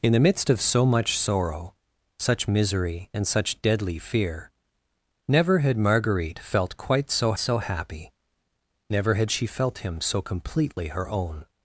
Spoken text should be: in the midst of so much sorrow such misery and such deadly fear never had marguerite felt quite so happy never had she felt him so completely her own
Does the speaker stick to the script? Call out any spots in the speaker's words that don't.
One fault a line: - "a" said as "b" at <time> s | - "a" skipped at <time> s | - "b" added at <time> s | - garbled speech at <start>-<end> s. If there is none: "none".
- "so" added at 7.4 s